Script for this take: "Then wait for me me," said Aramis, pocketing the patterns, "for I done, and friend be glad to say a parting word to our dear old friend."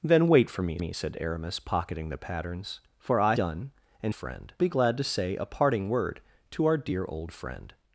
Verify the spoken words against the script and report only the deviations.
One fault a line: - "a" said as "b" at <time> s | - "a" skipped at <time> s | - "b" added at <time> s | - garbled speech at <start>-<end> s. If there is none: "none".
none